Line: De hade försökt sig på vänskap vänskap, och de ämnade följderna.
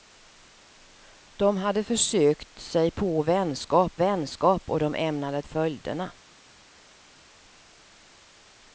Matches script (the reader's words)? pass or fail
pass